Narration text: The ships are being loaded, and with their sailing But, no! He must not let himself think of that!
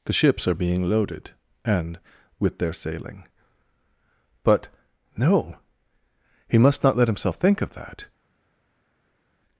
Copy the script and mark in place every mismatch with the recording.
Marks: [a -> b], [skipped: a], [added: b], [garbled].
The ships are being loaded, and with their sailing But, no! He must not let himself think of that!